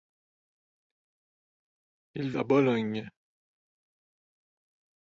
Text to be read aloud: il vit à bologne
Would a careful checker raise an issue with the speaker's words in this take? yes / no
yes